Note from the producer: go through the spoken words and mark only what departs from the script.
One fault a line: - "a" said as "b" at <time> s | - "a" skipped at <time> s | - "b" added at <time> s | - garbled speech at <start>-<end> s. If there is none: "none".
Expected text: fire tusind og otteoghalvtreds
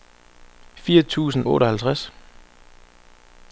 - "og" skipped at 1.5 s